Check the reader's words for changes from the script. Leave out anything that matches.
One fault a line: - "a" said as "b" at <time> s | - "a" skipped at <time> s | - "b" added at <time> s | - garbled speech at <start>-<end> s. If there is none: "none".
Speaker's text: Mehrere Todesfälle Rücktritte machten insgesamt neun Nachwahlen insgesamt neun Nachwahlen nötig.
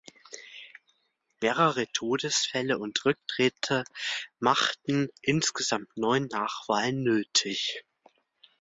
- "und" added at 2.8 s
- "insgesamt neun Nachwahlen" skipped at 7.0 s